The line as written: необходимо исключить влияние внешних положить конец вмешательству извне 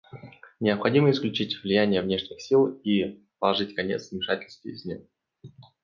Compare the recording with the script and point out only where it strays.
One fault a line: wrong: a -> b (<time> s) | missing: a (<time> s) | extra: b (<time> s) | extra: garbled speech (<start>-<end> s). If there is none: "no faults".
extra: сил и (2.4 s)